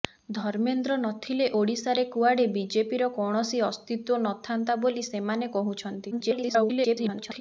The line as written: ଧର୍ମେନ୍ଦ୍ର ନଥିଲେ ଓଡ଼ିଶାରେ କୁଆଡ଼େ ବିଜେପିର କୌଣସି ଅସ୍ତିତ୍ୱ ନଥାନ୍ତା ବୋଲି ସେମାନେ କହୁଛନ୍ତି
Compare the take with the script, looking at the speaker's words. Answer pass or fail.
fail